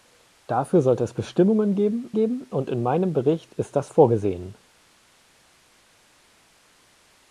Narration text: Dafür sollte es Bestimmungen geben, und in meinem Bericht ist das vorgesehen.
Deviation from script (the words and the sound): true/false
true